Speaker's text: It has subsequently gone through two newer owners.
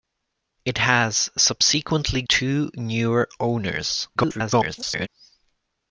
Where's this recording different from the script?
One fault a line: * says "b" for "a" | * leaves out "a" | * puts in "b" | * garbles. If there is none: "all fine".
* leaves out "gone through"
* garbles